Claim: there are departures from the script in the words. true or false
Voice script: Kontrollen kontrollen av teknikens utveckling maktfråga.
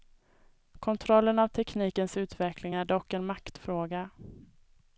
true